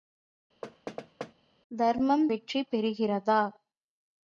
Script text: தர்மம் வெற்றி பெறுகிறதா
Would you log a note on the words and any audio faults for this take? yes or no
yes